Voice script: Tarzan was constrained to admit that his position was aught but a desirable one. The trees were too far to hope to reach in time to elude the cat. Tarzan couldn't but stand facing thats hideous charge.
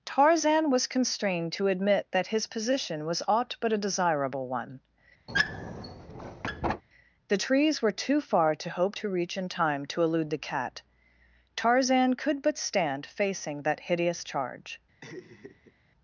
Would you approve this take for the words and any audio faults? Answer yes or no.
no